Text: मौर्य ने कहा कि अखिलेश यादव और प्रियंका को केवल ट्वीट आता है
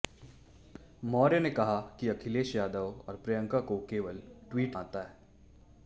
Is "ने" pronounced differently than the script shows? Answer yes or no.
no